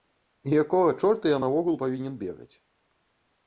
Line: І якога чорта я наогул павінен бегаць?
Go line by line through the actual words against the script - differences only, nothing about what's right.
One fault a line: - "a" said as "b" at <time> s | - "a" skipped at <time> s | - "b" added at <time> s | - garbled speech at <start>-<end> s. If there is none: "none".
none